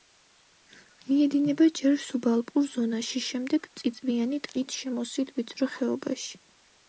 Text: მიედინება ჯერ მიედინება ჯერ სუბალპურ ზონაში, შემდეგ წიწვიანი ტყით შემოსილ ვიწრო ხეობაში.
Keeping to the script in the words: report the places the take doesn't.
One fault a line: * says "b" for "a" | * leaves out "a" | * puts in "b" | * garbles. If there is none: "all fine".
* leaves out "მიედინება ჯერ"